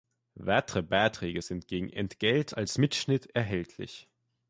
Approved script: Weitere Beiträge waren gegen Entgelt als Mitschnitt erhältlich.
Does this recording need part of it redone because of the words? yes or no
yes